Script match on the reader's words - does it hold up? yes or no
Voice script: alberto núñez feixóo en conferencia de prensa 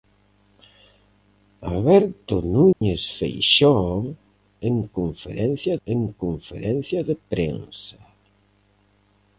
no